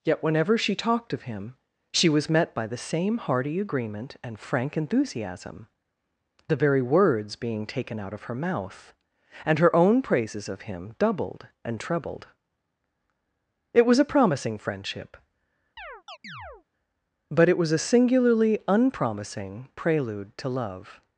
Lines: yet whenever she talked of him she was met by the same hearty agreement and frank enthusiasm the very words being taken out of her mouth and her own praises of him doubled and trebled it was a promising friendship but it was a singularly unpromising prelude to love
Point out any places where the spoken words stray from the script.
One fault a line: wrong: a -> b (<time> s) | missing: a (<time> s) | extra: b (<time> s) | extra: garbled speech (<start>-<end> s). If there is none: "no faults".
no faults